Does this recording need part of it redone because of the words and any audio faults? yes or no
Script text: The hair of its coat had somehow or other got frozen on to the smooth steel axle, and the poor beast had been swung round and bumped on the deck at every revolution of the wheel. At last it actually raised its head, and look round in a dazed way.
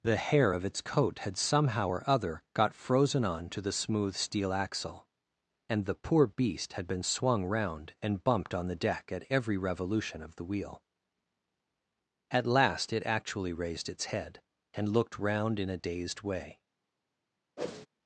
yes